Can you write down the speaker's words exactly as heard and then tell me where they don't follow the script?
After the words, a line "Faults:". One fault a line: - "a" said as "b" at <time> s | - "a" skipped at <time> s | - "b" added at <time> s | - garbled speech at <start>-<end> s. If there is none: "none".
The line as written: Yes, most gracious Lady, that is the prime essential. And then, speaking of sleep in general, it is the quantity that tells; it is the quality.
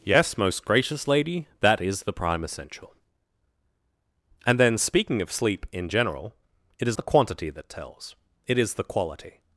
Yes, most gracious Lady, that is the prime essential. And then, speaking of sleep in general, it is the quantity that tells; it is the quality.
Faults:
none